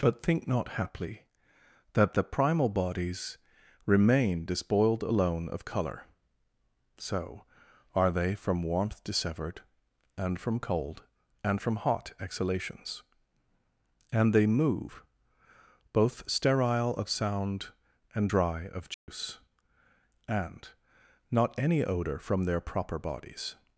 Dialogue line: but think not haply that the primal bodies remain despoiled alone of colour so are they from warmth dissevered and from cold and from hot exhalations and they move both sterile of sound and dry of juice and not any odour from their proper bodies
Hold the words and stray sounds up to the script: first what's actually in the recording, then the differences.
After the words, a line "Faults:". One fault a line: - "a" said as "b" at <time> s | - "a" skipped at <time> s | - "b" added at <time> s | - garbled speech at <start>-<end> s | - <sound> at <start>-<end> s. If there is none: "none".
but think not haply that the primal bodies remain despoiled alone of colour so are they from warmth dissevered and from cold and from hot exhalations and they move both sterile of sound and dry of juice and not any odour from their proper bodies
Faults:
- dropout at 18.9-19.1 s